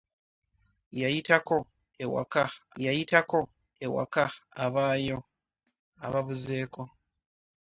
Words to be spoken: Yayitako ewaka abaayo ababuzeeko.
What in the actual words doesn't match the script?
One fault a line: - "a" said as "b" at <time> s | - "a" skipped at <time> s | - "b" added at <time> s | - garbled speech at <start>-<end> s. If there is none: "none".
- "yayitako ewaka" added at 2.8 s